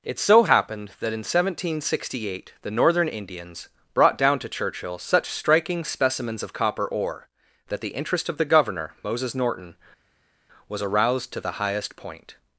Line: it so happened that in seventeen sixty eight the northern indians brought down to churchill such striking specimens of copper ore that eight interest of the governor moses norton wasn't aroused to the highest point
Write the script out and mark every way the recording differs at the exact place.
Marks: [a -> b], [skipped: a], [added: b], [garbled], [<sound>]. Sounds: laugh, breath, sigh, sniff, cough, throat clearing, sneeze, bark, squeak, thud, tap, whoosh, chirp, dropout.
it so happened that in seventeen sixty eight the northern indians brought down to churchill such striking specimens of copper ore that [eight -> the] interest of the governor moses norton [wasn't -> was] aroused to the highest point